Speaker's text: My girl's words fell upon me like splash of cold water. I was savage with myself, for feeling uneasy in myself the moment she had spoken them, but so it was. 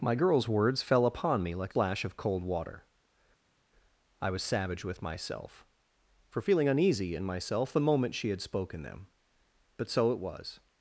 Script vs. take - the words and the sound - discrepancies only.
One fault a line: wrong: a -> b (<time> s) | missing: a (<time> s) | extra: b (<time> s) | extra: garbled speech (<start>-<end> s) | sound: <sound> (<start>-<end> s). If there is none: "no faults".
no faults